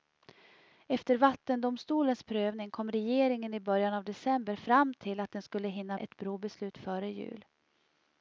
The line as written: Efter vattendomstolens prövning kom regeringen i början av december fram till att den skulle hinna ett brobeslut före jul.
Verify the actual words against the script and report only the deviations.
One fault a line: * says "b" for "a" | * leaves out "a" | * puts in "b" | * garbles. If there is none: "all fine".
all fine